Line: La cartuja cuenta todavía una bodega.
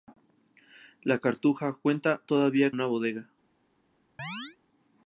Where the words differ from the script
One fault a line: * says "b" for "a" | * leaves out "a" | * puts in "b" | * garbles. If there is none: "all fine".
all fine